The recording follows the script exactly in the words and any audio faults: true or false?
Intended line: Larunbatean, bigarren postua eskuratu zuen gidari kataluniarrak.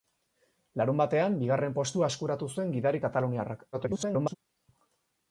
false